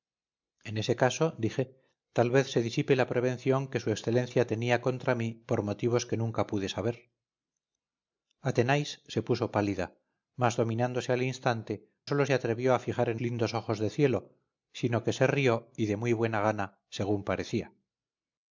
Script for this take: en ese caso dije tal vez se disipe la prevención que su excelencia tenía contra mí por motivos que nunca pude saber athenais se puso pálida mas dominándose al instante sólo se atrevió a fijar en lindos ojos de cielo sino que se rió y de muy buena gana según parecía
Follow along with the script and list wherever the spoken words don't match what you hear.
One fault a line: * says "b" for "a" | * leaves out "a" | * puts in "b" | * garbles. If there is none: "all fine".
all fine